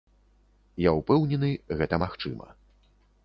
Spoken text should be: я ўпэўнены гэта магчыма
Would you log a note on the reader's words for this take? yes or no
no